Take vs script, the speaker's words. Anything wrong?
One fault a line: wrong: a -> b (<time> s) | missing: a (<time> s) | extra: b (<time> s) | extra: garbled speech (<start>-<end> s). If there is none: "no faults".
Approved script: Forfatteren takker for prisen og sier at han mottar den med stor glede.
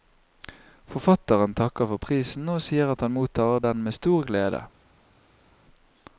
no faults